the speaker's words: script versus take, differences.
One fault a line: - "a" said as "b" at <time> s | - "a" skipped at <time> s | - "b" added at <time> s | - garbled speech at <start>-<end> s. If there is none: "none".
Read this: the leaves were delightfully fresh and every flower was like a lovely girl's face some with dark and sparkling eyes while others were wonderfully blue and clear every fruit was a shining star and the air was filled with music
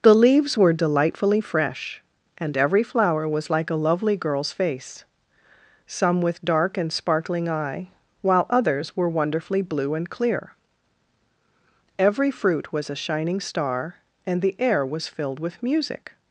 - "eyes" said as "eye" at 7.5 s